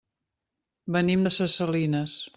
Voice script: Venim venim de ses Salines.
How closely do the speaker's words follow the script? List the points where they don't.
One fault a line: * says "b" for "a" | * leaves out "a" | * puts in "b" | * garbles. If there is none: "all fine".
* leaves out "venim"